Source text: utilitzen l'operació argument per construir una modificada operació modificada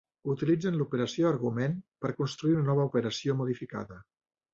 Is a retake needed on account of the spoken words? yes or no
yes